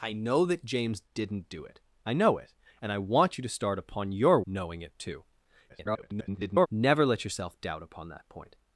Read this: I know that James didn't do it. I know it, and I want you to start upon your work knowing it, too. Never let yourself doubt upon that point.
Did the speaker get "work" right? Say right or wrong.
wrong